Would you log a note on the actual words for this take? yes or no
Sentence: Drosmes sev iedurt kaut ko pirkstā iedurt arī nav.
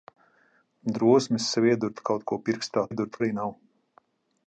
no